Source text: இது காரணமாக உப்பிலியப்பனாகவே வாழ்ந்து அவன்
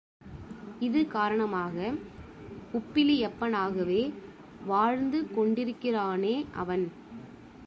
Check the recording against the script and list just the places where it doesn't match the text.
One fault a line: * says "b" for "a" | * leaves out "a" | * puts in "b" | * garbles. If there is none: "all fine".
* puts in "கொண்டிருக்கிறானே"